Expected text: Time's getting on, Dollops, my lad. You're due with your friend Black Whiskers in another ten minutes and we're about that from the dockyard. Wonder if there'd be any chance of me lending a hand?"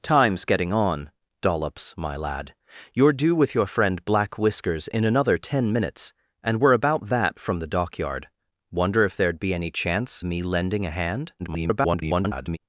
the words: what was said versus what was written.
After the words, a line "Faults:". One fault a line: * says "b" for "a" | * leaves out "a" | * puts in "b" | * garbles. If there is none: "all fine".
Time's getting on, Dollops, my lad. You're due with your friend Black Whiskers in another ten minutes and we're about that from the dockyard. Wonder if there'd be any chance me lending a hand?" [garbled]
Faults:
* leaves out "of"
* garbles